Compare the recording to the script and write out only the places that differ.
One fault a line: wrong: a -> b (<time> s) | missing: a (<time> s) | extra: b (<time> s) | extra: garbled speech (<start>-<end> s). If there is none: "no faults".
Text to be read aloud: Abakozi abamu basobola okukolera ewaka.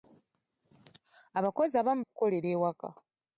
missing: basobola (2.0 s)